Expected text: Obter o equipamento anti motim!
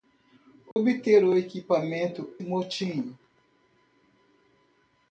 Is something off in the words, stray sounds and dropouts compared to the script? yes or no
yes